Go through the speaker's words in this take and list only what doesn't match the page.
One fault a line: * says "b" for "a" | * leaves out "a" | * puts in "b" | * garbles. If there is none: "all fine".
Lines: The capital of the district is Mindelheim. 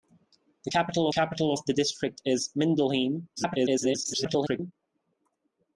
* puts in "capital"
* garbles